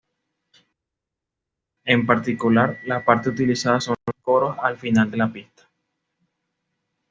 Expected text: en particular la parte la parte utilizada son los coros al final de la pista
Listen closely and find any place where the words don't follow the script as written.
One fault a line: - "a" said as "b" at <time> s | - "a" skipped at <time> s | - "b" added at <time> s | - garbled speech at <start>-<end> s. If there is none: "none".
- "la parte" skipped at 3.3 s